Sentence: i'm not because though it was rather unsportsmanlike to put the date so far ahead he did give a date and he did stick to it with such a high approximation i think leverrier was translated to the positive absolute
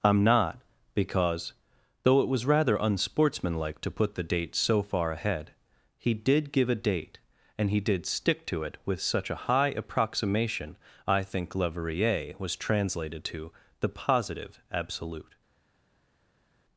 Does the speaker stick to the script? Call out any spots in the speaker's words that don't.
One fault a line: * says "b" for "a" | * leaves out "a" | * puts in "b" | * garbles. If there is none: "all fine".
all fine